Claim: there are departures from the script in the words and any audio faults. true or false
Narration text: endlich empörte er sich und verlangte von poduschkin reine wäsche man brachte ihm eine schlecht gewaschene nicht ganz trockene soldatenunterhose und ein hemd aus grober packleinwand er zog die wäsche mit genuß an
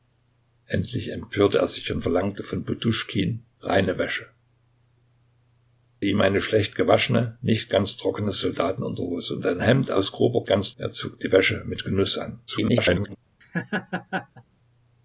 true